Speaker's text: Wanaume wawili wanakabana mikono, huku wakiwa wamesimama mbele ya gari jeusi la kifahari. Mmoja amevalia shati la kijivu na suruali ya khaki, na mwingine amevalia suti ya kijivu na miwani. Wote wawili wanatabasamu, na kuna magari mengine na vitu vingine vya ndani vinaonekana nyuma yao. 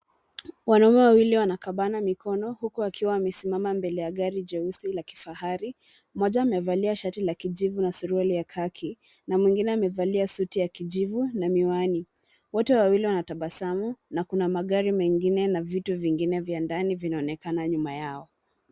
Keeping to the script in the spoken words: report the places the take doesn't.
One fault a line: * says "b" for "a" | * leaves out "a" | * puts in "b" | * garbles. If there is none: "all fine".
all fine